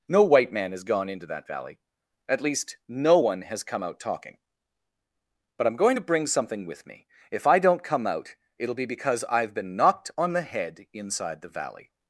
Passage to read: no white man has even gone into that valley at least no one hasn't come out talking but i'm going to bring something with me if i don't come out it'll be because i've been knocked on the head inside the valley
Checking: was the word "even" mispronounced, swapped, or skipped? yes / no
yes